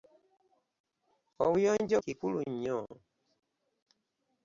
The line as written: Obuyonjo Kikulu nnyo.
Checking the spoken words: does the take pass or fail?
pass